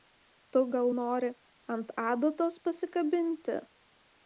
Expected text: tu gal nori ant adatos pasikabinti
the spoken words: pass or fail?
pass